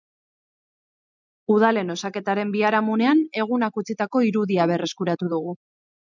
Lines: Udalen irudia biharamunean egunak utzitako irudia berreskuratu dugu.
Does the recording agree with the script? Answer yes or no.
no